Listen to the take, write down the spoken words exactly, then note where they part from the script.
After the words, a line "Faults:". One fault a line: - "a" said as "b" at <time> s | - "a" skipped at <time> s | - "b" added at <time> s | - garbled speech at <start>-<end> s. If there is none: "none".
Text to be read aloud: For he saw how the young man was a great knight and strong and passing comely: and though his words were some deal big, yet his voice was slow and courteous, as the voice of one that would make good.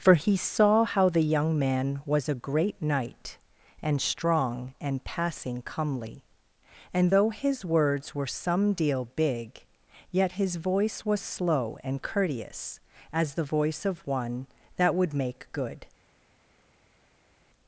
For he saw how the young man was a great knight and strong and passing comely: and though his words were some deal big, yet his voice was slow and courteous, as the voice of one that would make good.
Faults:
none